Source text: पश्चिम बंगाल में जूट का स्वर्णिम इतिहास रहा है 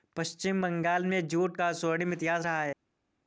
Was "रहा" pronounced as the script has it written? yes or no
yes